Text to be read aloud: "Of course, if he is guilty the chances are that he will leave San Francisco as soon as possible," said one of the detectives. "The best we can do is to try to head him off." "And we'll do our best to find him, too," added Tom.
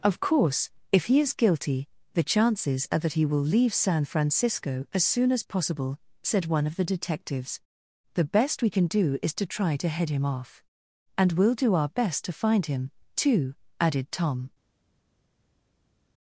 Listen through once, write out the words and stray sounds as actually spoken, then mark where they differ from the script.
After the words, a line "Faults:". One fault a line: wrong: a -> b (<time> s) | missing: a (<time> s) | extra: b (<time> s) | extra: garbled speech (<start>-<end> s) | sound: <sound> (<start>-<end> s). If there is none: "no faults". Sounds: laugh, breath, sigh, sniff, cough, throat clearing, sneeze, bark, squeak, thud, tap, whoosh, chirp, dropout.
"Of course, if he is guilty the chances are that he will leave San Francisco as soon as possible," said one of the detectives. "The best we can do is to try to head him off." "And we'll do our best to find him, too," added Tom.
Faults:
no faults